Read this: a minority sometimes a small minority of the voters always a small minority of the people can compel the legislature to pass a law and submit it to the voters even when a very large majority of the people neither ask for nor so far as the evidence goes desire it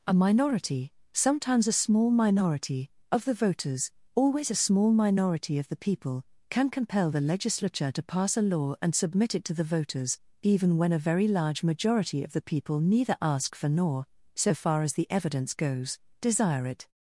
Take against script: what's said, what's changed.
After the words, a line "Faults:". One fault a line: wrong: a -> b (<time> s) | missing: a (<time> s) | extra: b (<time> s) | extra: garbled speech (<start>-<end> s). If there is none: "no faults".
a minority sometimes a small minority of the voters always a small minority of the people can compel the legislature to pass a law and submit it to the voters even when a very large majority of the people neither ask for nor so far as the evidence goes desire it
Faults:
no faults